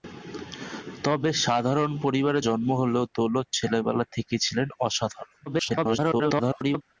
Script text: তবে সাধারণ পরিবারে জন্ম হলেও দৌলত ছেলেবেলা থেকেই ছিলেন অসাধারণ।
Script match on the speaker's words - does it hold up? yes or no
no